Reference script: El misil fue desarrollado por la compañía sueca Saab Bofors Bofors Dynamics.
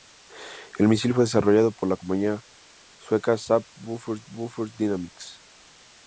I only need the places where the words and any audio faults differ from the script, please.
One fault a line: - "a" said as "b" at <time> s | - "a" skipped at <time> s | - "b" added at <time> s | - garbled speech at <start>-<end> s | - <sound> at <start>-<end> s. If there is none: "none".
none